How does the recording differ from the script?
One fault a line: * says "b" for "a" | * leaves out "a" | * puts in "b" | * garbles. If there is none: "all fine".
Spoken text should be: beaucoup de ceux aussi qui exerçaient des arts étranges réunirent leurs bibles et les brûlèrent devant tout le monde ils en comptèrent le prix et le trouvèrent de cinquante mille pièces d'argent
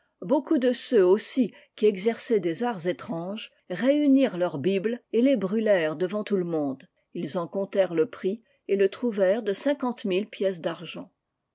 all fine